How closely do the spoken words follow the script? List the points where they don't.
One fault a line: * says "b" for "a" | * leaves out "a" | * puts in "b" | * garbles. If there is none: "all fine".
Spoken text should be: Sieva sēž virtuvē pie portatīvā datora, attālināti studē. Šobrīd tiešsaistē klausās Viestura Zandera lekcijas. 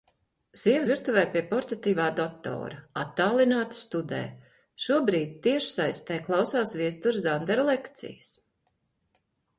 * leaves out "sēž"